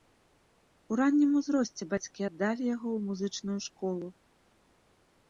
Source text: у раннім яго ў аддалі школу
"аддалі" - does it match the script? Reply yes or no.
no